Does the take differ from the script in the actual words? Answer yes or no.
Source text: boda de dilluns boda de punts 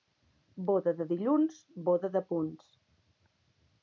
no